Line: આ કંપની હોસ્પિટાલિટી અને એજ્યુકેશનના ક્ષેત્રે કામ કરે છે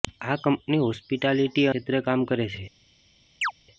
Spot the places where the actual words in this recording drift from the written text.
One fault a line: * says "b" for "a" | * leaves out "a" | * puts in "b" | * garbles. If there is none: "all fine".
* leaves out "અને એજ્યુકેશનના"